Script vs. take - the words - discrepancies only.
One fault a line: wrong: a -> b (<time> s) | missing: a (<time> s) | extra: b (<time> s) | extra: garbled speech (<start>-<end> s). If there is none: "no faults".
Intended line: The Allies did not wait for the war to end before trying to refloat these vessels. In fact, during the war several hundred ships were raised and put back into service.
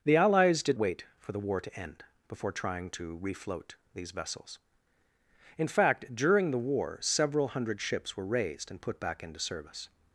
missing: not (0.8 s)